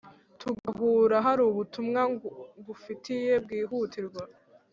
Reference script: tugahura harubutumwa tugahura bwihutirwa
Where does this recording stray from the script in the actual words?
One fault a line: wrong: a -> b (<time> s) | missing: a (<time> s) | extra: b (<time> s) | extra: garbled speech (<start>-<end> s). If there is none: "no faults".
wrong: tugahura -> ngufitiye (2.6 s)